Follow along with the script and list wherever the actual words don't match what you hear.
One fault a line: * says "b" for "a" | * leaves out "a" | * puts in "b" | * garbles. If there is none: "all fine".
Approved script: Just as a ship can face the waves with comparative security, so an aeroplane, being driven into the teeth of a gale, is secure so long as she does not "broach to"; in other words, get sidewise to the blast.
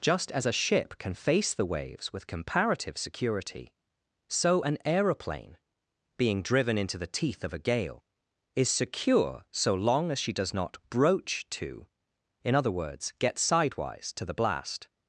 all fine